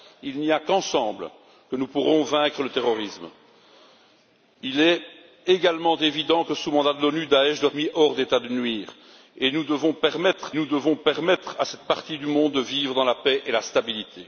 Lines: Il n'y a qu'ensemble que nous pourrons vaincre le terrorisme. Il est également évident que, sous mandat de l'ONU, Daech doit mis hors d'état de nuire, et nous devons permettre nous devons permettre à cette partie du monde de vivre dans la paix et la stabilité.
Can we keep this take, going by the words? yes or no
yes